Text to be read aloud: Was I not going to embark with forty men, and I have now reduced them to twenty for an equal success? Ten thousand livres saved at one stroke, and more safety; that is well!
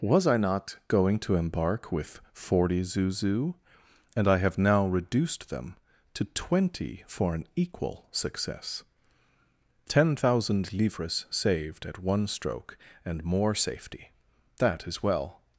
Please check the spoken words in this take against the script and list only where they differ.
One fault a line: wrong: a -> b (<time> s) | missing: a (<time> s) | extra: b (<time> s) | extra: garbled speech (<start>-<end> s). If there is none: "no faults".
wrong: men -> zuzu (2.8 s)